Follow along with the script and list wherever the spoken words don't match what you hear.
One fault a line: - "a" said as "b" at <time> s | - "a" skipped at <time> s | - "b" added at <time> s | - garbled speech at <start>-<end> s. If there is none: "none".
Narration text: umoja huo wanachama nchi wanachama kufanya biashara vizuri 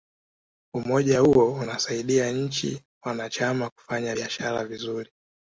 - "wanachama" said as "unasaidia" at 1.5 s